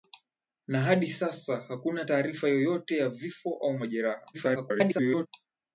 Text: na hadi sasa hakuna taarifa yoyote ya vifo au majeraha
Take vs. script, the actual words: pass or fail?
fail